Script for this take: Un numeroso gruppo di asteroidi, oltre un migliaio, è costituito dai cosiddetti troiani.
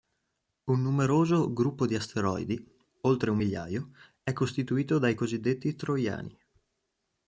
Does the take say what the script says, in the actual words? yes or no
yes